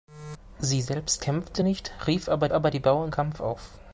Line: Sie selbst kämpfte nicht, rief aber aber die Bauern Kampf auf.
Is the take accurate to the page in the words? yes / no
yes